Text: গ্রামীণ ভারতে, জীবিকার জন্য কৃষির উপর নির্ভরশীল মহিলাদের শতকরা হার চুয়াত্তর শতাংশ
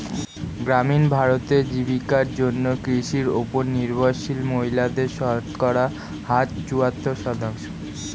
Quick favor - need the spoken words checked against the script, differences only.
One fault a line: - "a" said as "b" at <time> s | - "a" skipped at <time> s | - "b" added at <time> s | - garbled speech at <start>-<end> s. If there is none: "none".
none